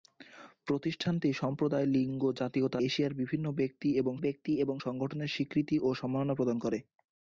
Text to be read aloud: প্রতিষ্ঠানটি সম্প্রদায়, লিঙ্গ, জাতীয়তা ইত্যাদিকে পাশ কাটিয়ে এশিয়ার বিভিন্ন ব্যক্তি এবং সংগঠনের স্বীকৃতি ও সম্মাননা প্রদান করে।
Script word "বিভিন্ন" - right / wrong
wrong